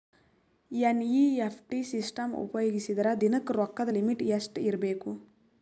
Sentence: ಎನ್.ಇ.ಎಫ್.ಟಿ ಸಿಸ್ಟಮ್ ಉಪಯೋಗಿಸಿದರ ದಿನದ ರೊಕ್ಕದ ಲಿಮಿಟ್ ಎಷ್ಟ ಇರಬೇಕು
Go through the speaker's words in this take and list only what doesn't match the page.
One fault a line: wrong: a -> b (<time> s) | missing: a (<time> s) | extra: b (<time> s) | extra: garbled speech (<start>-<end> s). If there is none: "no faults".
no faults